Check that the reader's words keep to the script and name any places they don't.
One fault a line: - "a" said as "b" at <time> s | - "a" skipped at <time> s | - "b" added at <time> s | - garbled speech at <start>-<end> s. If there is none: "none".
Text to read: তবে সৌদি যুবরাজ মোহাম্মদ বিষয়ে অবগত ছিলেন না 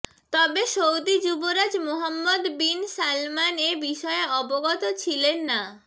- "বিন সালমান এ" added at 2.6 s